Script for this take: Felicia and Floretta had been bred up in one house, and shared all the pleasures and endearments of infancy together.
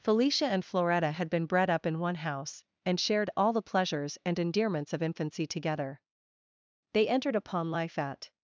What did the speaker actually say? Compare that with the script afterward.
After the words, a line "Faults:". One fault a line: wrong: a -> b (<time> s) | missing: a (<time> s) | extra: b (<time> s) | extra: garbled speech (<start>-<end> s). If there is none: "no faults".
Felicia and Floretta had been bred up in one house, and shared all the pleasures and endearments of infancy together. They entered upon life at
Faults:
extra: They entered upon life at (6.9 s)